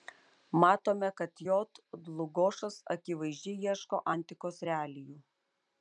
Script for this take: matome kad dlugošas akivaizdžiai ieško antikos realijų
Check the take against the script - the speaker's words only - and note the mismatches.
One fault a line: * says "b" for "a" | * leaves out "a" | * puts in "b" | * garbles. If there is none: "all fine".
* puts in "j"